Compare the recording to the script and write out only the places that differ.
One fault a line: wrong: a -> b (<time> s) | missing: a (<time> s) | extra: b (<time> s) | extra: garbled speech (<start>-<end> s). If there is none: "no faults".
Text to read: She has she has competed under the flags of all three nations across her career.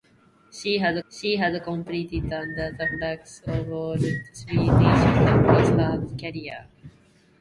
no faults